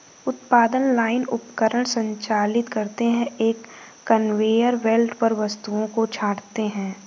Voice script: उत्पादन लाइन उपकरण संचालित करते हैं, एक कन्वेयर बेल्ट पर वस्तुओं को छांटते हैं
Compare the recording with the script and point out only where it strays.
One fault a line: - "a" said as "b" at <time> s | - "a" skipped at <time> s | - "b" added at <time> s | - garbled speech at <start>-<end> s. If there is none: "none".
none